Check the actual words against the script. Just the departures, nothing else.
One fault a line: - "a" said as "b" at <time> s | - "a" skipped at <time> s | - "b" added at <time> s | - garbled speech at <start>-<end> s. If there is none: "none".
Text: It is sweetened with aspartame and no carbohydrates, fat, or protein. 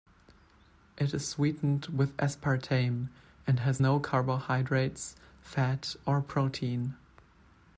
- "has" added at 3.6 s